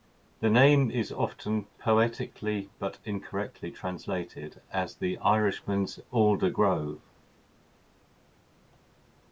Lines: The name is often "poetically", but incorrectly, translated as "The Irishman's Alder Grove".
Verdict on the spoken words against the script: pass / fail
pass